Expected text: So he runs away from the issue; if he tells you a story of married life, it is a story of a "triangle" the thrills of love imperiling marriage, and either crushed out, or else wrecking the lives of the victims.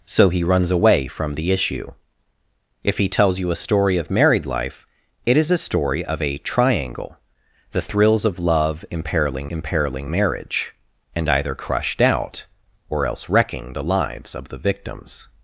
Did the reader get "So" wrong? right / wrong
right